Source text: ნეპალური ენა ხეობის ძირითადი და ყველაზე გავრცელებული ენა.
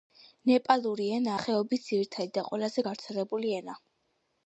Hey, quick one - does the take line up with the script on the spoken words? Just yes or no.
yes